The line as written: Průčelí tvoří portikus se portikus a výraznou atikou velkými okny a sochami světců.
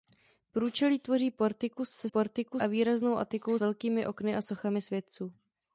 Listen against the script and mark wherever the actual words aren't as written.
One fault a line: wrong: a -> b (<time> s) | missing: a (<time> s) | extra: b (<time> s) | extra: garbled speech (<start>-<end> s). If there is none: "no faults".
no faults